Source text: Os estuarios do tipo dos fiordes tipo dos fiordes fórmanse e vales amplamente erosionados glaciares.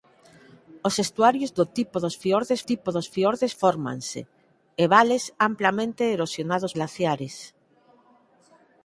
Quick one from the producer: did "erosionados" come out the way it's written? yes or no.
yes